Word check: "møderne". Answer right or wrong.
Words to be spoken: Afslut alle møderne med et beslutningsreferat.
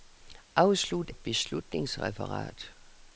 wrong